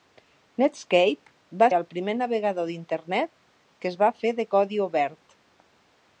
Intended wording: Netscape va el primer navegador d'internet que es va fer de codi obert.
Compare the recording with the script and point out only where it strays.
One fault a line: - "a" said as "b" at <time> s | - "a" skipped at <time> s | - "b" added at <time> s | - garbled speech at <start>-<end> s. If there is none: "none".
none